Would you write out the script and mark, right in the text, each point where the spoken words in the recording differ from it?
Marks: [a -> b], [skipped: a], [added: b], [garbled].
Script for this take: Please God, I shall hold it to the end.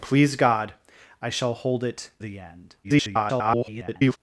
Please God, I shall hold it [skipped: to] the end. [garbled]